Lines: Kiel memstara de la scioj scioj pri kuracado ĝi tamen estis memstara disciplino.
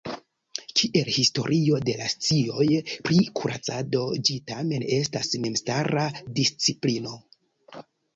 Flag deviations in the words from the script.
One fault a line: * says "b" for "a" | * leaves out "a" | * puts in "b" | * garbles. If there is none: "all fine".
* says "historio" for "memstara"
* leaves out "scioj"
* says "estas" for "estis"